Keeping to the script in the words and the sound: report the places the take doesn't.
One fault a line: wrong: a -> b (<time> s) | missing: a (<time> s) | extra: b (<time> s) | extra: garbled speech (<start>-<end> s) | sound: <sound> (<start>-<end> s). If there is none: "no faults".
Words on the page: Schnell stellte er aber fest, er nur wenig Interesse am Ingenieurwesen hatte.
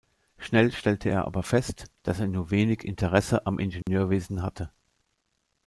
extra: dass (2.1 s)
sound: dropout (3.8-3.9 s)